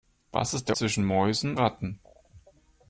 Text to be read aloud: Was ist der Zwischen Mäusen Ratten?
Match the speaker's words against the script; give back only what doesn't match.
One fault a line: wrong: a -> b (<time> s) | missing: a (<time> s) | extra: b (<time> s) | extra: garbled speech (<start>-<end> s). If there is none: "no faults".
no faults